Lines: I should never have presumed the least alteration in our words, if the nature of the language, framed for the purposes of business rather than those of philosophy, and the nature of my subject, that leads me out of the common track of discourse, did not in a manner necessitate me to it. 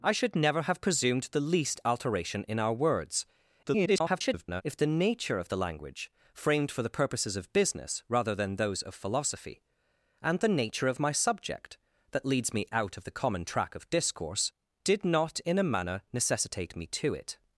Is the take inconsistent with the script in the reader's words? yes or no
yes